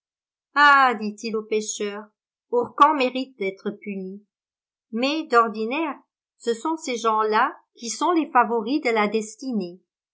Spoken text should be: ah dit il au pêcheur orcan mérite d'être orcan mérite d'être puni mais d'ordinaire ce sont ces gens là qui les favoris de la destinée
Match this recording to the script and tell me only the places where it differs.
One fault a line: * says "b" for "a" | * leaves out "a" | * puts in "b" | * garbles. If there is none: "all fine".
* leaves out "orcan mérite d'être"
* puts in "sont"